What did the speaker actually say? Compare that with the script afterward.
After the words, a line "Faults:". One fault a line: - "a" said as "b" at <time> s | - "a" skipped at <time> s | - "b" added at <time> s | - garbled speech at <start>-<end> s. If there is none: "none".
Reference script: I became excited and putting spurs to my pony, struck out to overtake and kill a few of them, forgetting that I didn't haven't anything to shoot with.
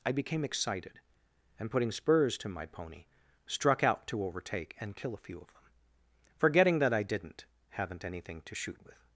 I became excited and putting spurs to my pony, struck out to overtake and kill a few of them, forgetting that I didn't haven't anything to shoot with.
Faults:
none